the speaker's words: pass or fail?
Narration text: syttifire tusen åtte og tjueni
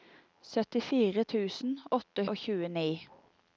pass